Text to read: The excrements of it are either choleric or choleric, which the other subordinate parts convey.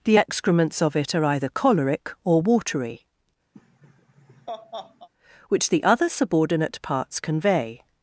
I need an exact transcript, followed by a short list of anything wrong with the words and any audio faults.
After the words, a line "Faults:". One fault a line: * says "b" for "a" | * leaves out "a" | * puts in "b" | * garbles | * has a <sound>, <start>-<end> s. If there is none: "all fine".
The excrements of it are either choleric or watery, which the other subordinate parts convey.
Faults:
* says "watery" for "choleric"
* has a laugh, 3.5-5.1 s